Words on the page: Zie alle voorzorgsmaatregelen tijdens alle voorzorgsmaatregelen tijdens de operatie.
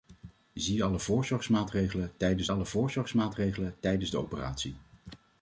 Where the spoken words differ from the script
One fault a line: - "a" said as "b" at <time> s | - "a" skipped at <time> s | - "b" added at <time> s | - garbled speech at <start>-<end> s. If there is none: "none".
none